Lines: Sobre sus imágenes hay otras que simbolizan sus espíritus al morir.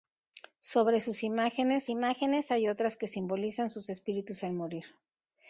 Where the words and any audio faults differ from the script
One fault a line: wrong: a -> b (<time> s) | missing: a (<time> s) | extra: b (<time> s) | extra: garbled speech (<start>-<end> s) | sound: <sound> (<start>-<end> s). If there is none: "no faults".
extra: imágenes (1.9 s)